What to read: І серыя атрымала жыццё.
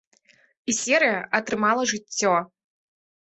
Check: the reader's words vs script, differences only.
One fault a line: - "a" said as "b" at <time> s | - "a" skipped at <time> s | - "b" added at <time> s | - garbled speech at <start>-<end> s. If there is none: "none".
none